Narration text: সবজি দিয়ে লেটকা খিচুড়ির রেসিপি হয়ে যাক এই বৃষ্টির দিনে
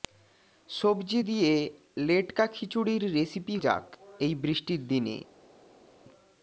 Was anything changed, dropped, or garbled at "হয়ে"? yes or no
yes